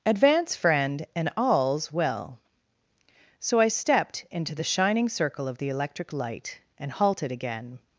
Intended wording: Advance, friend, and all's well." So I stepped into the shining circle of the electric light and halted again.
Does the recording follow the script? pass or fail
pass